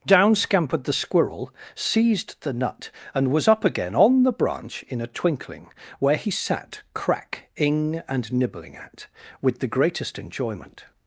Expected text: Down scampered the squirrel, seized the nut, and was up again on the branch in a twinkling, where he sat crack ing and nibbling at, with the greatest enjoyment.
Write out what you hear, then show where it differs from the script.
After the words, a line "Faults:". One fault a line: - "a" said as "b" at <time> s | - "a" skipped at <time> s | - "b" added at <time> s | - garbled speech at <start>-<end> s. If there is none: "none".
Down scampered the squirrel, seized the nut, and was up again on the branch in a twinkling, where he sat crack ing and nibbling at, with the greatest enjoyment.
Faults:
none